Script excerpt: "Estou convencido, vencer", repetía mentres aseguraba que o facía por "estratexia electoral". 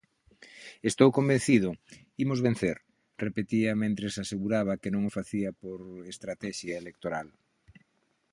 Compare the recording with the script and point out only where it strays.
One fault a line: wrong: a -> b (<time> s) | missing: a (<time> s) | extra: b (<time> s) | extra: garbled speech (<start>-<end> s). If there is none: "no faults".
extra: imos (2.2 s)
extra: non (4.9 s)